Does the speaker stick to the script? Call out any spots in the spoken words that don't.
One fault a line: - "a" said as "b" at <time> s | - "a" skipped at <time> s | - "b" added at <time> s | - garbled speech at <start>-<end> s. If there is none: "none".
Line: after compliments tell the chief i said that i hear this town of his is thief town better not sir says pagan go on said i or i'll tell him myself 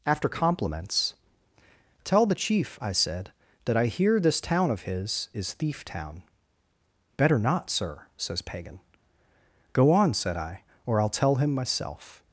none